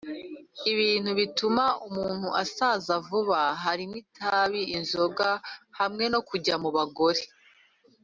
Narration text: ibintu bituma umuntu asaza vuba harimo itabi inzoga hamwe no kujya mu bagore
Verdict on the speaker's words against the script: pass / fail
pass